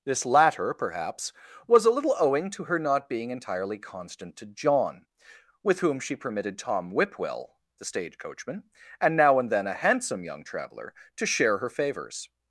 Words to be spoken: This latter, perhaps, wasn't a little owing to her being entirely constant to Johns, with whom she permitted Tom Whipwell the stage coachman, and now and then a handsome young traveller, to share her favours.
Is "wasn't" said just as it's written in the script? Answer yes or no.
no